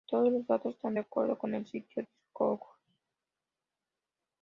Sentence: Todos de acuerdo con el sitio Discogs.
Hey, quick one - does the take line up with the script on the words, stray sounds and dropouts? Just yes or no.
no